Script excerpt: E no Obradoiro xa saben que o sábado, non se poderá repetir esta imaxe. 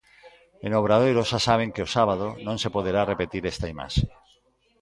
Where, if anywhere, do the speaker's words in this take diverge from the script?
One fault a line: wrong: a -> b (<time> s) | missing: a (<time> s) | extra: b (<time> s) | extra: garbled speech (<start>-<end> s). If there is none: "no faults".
no faults